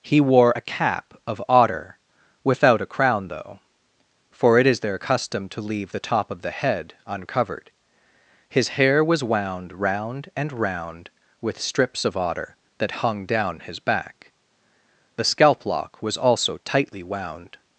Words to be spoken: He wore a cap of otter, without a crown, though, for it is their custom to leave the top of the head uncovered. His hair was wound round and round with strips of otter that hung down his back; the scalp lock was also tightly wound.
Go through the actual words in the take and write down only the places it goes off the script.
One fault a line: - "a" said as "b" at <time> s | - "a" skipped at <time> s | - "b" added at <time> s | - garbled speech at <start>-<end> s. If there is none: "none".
none